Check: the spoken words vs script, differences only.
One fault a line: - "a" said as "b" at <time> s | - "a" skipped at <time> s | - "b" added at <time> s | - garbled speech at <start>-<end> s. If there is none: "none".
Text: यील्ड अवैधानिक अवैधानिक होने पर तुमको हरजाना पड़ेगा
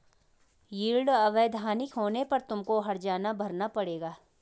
- "अवैधानिक" skipped at 1.9 s
- "भरना" added at 3.3 s